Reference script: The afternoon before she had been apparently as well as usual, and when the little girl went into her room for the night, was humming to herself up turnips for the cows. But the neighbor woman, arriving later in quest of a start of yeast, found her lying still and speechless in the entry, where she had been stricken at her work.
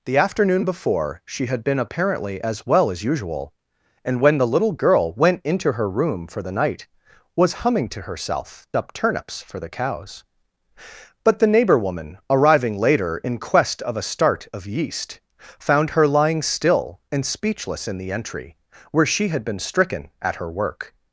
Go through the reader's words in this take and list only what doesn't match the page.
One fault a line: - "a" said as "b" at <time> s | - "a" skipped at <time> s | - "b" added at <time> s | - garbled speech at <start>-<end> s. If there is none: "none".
none